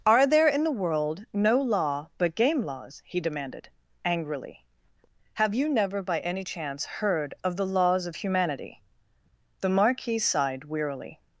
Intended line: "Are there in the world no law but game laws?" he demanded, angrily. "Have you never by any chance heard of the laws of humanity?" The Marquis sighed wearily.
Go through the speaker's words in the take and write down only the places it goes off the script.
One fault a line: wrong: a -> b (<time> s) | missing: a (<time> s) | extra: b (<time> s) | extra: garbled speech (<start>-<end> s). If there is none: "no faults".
no faults